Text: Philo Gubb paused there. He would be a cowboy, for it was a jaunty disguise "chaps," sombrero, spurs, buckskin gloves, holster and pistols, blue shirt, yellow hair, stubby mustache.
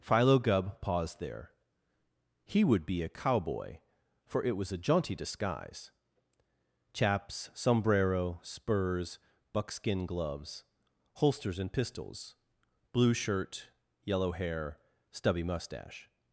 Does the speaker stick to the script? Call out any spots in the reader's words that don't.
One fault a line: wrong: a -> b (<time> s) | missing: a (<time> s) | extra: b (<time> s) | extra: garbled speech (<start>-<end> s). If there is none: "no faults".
wrong: holster -> holsters (11.1 s)